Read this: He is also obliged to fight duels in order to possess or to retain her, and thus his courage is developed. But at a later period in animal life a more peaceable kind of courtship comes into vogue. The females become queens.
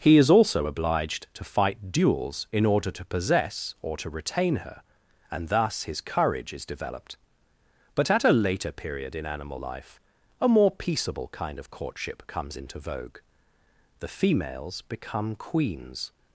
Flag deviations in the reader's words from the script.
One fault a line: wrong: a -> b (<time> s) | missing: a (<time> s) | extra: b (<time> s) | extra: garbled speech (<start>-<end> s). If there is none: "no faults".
no faults